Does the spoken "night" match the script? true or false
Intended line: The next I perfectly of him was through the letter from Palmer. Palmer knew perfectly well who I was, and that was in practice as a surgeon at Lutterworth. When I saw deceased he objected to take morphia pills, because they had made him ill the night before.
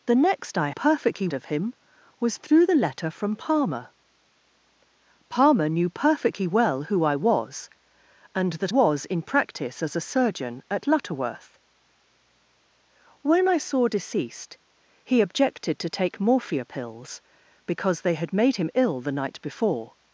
true